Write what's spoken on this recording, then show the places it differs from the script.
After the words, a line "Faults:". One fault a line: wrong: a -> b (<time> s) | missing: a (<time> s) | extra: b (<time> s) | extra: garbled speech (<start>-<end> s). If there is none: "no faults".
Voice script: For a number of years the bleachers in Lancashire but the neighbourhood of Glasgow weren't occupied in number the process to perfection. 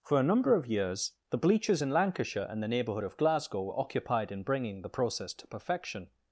For a number of years the bleachers in Lancashire and the neighbourhood of Glasgow were occupied in bringing the process to perfection.
Faults:
wrong: but -> and (2.5 s)
wrong: weren't -> were (3.6 s)
wrong: number -> bringing (4.4 s)